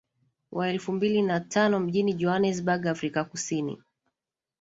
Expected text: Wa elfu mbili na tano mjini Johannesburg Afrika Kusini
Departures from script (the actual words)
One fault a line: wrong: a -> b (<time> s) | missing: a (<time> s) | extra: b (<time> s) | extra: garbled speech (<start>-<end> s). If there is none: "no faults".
no faults